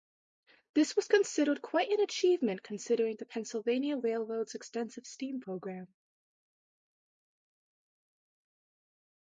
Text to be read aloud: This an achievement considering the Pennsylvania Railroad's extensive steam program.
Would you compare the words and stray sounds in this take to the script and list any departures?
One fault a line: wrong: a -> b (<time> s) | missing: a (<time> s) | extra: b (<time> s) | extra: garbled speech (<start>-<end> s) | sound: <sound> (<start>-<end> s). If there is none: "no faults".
extra: was considered quite (0.9 s)